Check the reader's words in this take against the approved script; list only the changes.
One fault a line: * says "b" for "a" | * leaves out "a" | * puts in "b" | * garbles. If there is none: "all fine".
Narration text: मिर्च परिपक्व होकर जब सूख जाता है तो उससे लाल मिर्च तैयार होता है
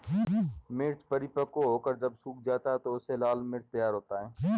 all fine